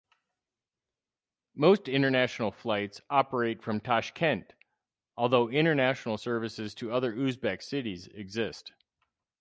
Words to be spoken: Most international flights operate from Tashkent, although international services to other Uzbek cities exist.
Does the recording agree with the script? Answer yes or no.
yes